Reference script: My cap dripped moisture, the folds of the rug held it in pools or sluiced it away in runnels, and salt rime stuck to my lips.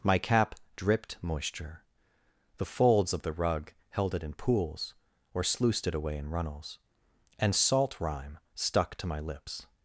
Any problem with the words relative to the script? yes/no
no